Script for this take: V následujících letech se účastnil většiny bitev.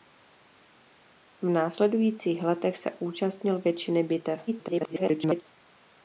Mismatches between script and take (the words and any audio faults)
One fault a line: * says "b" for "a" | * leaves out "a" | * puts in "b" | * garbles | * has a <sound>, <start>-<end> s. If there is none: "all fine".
* garbles